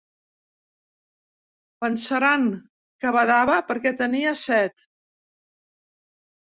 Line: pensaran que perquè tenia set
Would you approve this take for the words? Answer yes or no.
no